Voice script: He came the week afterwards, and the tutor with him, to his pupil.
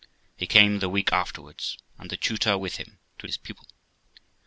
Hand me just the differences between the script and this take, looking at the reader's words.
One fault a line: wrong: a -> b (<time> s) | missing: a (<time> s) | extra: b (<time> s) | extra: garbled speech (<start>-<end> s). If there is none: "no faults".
no faults